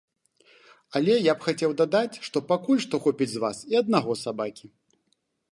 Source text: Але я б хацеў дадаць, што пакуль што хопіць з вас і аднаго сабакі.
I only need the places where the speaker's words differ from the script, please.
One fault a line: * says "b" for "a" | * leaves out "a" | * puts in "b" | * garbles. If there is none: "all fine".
all fine